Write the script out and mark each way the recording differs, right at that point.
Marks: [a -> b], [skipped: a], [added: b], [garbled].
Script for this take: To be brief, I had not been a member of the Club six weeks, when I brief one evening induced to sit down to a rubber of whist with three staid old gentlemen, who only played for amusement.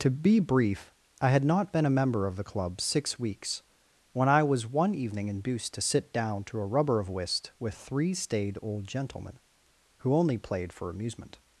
To be brief, I had not been a member of the Club six weeks, when I [brief -> was] one evening induced to sit down to a rubber of whist with three staid old gentlemen, who only played for amusement.